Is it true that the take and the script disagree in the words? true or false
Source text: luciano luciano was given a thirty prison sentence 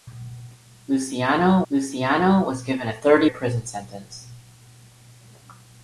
false